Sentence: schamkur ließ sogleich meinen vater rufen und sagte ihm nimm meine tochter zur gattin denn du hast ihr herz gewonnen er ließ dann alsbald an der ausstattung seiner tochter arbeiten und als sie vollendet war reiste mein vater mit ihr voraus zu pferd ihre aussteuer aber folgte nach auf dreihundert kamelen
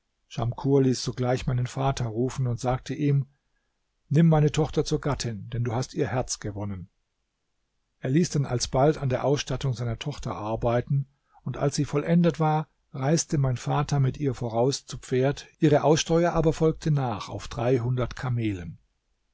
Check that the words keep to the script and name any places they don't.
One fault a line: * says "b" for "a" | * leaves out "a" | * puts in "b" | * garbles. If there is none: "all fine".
all fine